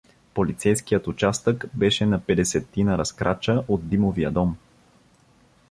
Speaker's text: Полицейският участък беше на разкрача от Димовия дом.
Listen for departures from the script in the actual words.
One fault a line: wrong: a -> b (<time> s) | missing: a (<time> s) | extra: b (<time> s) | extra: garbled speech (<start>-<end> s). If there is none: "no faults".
extra: петдесетина (2.2 s)